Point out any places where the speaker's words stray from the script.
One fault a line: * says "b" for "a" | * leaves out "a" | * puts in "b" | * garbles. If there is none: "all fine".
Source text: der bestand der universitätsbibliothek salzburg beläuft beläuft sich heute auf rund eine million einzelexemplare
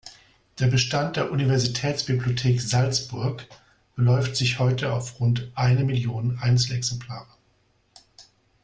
* leaves out "beläuft"